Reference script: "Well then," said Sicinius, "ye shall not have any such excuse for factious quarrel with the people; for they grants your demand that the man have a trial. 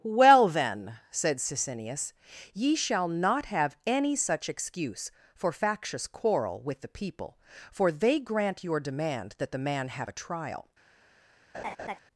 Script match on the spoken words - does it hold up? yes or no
no